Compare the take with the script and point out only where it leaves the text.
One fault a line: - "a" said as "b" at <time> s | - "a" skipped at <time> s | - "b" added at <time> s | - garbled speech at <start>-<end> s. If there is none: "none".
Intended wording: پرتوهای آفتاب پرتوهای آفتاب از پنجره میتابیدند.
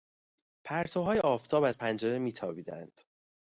- "پرتوهای آفتاب" skipped at 1.6 s